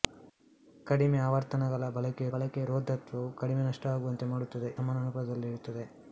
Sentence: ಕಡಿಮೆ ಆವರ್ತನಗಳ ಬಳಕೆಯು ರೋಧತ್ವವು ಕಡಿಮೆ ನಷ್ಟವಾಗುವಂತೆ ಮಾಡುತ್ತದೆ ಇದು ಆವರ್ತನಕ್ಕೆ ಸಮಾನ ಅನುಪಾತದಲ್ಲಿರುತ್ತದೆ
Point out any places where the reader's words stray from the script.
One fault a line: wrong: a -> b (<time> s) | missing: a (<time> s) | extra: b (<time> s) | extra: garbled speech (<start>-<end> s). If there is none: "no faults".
extra: ಬಳಕೆಯು (2.3 s)
missing: ಇದು ಆವರ್ತನಕ್ಕೆ (4.7 s)